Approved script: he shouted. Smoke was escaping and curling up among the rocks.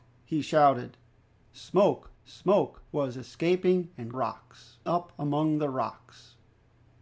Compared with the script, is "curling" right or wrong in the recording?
wrong